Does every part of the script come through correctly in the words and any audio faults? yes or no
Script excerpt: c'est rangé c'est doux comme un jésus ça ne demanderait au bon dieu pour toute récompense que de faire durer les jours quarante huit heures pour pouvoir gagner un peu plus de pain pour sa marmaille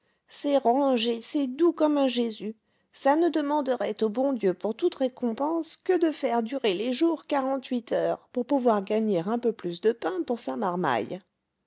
yes